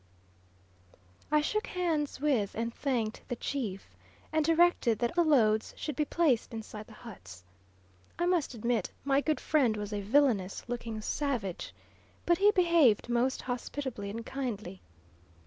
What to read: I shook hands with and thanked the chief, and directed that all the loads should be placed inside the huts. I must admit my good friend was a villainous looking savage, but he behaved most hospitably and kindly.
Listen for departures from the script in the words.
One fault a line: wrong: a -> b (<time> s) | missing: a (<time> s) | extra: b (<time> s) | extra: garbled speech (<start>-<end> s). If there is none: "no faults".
missing: all (5.1 s)